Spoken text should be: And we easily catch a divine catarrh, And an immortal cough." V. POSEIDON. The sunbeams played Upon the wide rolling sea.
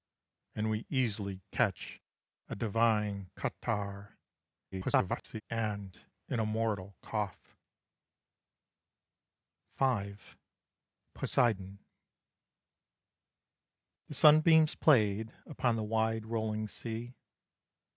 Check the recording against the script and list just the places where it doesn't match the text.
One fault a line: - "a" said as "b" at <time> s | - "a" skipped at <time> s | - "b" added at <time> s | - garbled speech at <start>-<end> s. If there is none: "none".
- garbled speech at 4.7-5.4 s